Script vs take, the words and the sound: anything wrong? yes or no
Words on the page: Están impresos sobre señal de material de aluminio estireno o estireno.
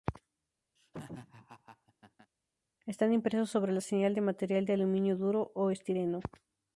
yes